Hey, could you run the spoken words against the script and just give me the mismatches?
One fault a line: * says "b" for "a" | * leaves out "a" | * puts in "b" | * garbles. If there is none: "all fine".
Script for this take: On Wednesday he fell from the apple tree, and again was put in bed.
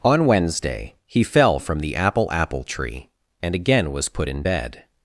* puts in "apple"